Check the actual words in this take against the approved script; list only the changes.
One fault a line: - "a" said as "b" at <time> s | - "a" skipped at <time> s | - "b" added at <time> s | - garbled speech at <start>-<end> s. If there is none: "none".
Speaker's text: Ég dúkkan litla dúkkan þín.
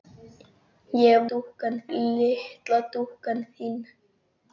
none